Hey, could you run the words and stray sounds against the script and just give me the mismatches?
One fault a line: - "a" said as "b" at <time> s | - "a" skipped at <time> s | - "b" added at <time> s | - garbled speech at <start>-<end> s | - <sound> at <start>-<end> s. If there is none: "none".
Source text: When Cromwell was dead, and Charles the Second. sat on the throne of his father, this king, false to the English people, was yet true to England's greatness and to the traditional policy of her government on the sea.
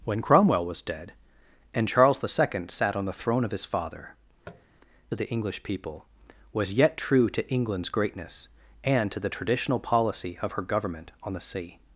- "this king false" skipped at 4.2 s
- tap at 4.5-4.6 s